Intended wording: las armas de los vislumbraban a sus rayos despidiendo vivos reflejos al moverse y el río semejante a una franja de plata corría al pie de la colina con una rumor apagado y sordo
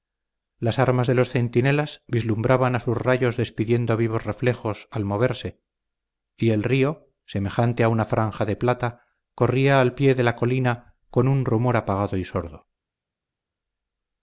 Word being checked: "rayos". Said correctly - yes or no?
yes